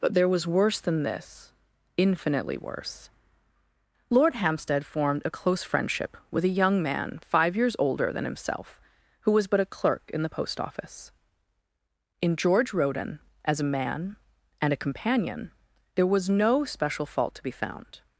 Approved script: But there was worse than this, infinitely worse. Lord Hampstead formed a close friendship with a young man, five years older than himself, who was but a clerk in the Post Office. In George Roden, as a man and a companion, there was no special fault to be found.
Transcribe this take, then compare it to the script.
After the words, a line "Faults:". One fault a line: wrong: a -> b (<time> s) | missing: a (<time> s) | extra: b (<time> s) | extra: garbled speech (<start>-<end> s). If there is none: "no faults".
But there was worse than this, infinitely worse. Lord Hampstead formed a close friendship with a young man, five years older than himself, who was but a clerk in the Post Office. In George Roden, as a man and a companion, there was no special fault to be found.
Faults:
no faults